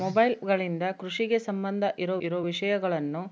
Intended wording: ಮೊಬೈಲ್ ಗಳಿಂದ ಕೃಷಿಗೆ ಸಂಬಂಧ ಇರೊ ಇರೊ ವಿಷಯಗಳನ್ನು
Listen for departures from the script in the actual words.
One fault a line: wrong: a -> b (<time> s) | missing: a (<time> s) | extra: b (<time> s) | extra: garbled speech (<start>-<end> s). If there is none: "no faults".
no faults